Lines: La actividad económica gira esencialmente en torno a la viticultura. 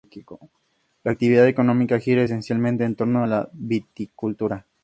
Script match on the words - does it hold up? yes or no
yes